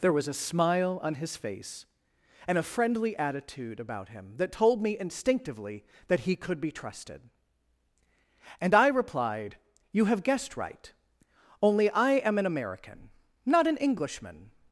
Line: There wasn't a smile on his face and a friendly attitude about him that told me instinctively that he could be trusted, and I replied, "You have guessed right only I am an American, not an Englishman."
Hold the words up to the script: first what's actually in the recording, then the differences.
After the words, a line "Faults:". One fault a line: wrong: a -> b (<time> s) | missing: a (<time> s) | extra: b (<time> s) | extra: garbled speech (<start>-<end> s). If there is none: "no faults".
There was a smile on his face and a friendly attitude about him that told me instinctively that he could be trusted, and I replied, "You have guessed right only I am an American, not an Englishman."
Faults:
wrong: wasn't -> was (0.1 s)